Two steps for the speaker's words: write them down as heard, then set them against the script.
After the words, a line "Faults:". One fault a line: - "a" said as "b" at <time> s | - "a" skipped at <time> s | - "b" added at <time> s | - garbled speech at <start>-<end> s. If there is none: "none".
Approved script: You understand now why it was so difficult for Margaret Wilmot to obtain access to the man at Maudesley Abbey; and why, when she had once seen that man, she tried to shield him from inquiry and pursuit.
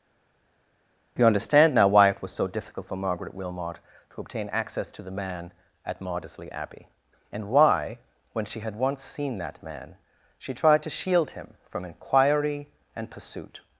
You understand now why it was so difficult for Margaret Wilmot to obtain access to the man at Maudesley Abbey; and why, when she had once seen that man, she tried to shield him from inquiry and pursuit.
Faults:
none